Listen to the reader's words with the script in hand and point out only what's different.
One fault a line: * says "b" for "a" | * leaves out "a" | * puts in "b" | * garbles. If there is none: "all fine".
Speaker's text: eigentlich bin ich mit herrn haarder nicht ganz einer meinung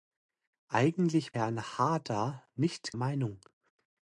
* leaves out "bin ich mit"
* leaves out "ganz einer"